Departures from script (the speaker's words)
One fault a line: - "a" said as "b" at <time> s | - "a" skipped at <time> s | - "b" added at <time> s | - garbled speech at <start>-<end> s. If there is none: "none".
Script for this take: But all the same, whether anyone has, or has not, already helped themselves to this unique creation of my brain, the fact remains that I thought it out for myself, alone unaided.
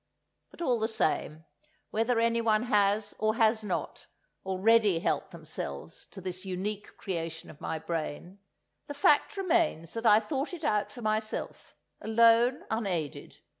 none